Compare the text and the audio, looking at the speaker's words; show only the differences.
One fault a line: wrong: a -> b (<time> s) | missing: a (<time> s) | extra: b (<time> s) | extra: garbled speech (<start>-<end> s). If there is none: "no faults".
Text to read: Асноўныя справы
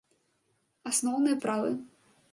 no faults